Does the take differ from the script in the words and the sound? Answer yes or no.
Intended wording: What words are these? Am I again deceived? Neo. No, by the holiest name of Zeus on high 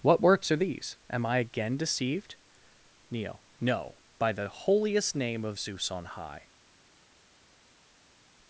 yes